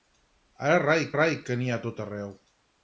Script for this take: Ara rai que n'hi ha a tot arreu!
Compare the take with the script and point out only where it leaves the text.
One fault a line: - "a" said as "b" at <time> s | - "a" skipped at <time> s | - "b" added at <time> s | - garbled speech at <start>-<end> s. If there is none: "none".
- "rai" added at 1.2 s